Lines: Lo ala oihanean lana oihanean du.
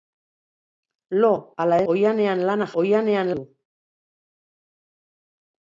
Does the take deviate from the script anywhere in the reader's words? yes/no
no